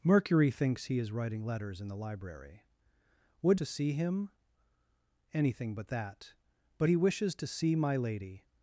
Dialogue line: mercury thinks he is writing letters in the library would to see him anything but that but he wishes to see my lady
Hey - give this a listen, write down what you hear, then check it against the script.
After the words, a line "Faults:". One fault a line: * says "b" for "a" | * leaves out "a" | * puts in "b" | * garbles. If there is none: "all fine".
mercury thinks he is writing letters in the library would to see him anything but that but he wishes to see my lady
Faults:
all fine